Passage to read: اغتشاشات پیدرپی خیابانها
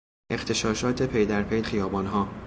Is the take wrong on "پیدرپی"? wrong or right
right